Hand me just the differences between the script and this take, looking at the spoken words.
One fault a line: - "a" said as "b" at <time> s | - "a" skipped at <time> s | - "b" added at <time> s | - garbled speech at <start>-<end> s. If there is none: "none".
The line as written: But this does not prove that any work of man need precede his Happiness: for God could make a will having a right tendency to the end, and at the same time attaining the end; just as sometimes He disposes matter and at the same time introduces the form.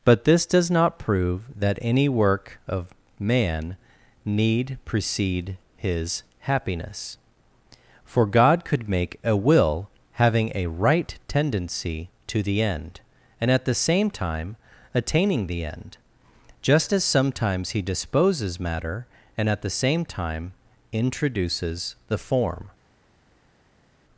none